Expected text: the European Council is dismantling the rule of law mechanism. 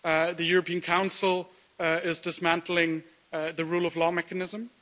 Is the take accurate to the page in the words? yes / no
yes